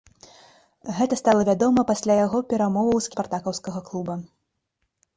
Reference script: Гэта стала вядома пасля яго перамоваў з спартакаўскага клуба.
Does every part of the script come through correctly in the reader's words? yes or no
yes